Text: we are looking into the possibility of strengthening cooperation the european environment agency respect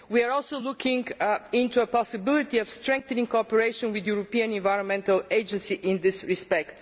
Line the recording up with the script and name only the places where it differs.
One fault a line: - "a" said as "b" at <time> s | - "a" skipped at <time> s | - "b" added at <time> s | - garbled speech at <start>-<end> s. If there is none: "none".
- "also" added at 0.3 s
- "with" added at 3.9 s
- "in this" added at 5.7 s